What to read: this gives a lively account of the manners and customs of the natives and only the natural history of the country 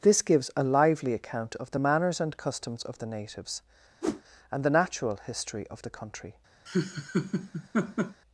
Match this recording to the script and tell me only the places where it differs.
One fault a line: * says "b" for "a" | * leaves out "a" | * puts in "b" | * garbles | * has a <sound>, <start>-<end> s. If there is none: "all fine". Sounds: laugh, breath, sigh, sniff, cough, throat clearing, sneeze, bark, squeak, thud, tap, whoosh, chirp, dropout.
* has a whoosh, 4.0-4.2 s
* leaves out "only"
* has a laugh, 6.7-8.2 s